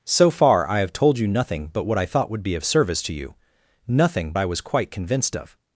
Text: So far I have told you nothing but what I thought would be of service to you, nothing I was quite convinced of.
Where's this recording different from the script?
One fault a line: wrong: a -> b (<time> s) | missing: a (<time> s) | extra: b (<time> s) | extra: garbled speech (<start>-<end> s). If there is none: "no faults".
no faults